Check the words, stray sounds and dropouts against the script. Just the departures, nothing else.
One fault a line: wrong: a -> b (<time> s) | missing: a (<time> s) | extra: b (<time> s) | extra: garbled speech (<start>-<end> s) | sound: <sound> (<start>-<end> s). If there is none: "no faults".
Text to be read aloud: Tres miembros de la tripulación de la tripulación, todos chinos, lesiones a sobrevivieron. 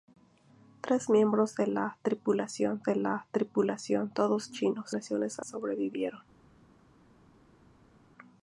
no faults